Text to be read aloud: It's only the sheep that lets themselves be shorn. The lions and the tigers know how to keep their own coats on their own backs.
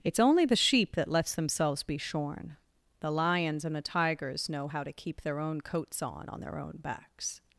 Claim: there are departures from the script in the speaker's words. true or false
true